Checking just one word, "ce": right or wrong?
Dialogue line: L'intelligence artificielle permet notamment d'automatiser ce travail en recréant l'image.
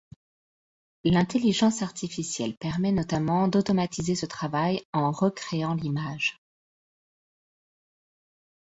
right